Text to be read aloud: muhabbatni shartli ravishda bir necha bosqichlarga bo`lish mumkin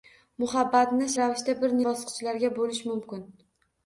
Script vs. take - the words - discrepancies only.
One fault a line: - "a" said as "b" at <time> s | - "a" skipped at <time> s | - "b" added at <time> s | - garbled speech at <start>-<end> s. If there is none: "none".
- "shartli" skipped at 1.1 s
- "necha" skipped at 1.8 s